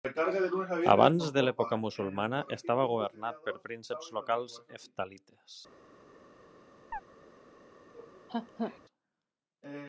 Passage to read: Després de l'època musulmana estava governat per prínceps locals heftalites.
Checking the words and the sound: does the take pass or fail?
fail